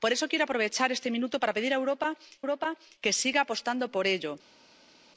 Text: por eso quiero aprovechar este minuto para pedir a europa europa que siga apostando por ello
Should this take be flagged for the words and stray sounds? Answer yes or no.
no